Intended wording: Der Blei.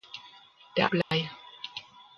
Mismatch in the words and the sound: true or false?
true